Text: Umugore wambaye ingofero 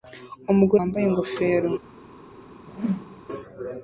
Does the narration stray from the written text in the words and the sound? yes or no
yes